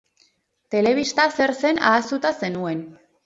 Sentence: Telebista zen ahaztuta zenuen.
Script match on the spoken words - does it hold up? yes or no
no